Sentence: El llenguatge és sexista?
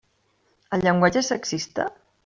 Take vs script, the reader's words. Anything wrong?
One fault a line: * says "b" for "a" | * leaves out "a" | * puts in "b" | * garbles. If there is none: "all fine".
all fine